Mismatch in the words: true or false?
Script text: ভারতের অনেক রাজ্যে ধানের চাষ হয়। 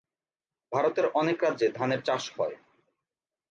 false